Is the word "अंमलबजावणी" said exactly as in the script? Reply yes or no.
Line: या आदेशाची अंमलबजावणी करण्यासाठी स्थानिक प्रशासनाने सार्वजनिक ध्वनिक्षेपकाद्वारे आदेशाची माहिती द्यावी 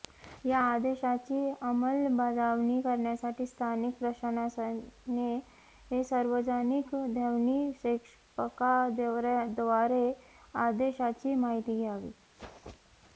yes